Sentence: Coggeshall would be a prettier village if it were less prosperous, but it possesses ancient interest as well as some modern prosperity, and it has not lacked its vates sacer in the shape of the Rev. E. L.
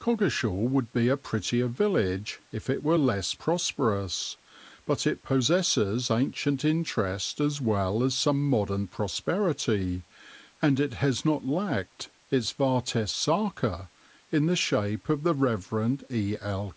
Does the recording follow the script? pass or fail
pass